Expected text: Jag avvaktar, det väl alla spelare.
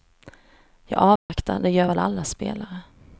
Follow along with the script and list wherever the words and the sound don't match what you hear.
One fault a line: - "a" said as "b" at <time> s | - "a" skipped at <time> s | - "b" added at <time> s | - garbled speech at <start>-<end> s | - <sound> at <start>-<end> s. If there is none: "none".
- dropout at 1.2-1.3 s
- "gör" added at 1.7 s